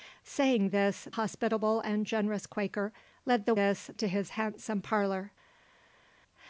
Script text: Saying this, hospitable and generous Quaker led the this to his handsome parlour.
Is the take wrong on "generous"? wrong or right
right